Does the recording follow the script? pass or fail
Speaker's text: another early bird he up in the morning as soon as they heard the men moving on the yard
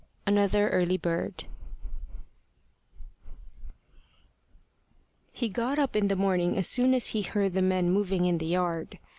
fail